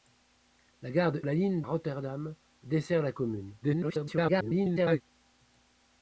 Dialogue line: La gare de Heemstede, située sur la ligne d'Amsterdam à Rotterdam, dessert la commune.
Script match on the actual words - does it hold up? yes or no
no